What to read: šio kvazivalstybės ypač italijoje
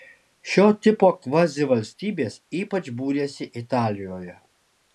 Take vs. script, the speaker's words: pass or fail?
fail